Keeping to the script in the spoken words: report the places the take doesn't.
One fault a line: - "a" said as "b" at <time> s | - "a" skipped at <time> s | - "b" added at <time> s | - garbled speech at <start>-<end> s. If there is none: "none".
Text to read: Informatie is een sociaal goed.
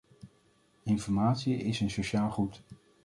none